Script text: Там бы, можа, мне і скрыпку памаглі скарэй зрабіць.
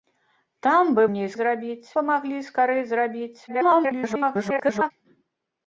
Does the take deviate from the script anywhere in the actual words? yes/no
yes